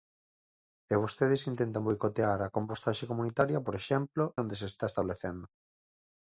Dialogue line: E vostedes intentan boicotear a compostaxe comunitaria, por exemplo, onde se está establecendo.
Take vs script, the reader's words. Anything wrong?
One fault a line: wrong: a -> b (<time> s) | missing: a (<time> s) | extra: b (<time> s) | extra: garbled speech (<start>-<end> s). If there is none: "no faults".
no faults